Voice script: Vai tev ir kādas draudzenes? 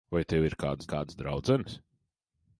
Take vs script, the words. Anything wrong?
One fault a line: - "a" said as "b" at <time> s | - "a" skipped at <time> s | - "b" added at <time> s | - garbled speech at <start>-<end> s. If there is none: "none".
- "kādas" added at 0.9 s